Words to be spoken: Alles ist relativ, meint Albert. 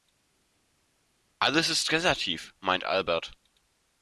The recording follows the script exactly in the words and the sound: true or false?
true